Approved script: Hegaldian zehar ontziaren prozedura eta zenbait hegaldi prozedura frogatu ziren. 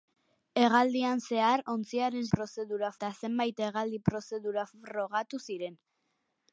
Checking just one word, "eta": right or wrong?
right